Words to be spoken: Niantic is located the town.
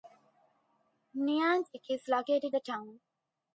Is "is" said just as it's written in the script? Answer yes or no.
yes